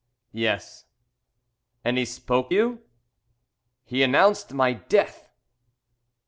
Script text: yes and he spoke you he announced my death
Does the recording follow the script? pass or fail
pass